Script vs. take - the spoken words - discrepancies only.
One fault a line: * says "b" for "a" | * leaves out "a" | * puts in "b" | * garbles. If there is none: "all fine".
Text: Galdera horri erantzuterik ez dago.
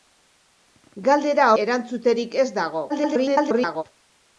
* leaves out "horri"
* garbles